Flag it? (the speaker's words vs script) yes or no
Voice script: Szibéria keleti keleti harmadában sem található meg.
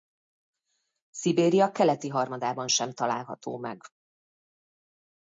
yes